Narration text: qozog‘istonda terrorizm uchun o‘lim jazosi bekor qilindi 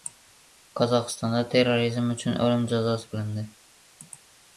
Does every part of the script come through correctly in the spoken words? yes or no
no